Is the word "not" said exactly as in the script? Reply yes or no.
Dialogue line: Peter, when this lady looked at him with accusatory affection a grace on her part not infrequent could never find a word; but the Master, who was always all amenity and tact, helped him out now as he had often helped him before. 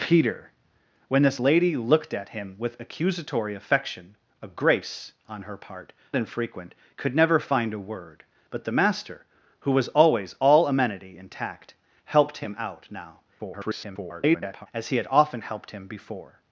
no